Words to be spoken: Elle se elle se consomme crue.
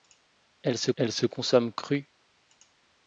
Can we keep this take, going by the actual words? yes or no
yes